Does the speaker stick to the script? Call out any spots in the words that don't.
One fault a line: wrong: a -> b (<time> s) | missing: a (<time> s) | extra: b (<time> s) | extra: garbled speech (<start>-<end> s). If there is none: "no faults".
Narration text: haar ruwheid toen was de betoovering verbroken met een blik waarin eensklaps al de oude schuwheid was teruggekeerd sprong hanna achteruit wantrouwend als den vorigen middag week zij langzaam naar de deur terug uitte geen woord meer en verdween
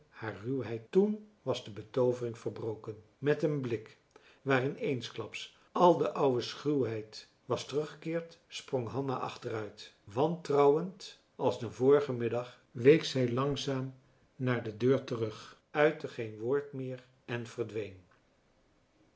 no faults